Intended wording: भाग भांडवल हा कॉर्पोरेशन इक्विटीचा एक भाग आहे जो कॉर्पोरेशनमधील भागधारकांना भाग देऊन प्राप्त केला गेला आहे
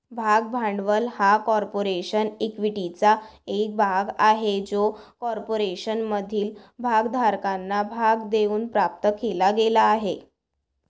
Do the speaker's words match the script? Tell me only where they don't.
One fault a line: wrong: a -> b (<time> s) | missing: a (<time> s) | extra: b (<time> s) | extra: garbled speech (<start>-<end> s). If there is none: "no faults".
no faults